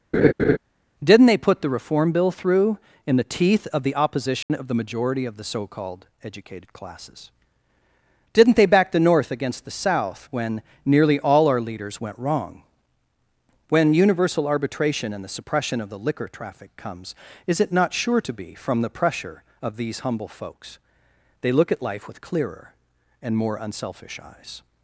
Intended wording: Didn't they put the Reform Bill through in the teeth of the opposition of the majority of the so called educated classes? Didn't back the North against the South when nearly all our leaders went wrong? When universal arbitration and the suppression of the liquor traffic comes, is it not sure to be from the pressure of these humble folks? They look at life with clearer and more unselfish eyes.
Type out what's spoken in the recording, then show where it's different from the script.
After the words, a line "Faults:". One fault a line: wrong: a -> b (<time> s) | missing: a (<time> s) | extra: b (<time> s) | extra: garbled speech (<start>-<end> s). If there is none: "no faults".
Didn't they put the Reform Bill through in the teeth of the opposition of the majority of the so called educated classes? Didn't they back the North against the South when nearly all our leaders went wrong? When universal arbitration and the suppression of the liquor traffic comes, is it not sure to be from the pressure of these humble folks? They look at life with clearer and more unselfish eyes.
Faults:
extra: they (8.6 s)